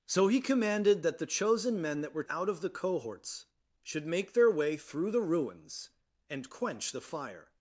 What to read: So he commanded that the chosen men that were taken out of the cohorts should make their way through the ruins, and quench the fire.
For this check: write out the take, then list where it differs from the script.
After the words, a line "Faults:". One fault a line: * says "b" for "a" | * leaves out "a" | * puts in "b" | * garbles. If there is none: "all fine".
So he commanded that the chosen men that were out of the cohorts should make their way through the ruins, and quench the fire.
Faults:
* leaves out "taken"